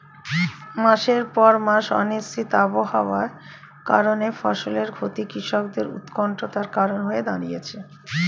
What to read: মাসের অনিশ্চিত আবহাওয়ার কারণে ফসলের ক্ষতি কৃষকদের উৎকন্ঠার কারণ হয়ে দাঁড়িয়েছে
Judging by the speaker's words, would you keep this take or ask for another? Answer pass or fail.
fail